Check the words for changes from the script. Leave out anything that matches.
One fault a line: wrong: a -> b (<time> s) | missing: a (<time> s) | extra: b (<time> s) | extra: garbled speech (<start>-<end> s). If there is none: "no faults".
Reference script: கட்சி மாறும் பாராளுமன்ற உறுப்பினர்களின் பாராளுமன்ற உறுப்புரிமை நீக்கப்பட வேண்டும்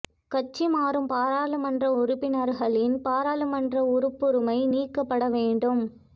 no faults